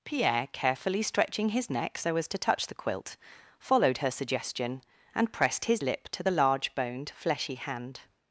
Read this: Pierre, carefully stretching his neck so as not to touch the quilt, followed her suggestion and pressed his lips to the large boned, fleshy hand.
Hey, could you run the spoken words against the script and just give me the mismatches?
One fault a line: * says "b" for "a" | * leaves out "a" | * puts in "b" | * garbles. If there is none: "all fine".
* leaves out "not"
* says "lip" for "lips"